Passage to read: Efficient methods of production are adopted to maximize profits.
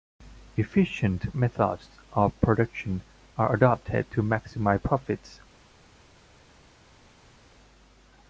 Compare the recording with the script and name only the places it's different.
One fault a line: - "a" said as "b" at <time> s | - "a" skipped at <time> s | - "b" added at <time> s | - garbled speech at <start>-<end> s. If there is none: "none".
none